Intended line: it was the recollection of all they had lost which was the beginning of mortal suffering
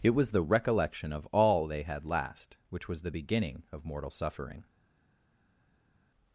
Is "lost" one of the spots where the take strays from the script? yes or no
yes